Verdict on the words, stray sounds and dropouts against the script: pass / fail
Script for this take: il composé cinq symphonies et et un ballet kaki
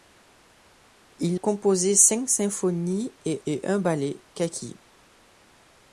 pass